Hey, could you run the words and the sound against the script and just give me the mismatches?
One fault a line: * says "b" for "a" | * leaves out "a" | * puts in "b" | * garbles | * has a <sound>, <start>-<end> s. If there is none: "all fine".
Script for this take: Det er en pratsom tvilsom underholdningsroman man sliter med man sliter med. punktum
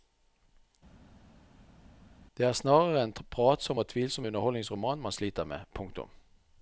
* puts in "snarere"
* puts in "og"
* leaves out "man sliter med"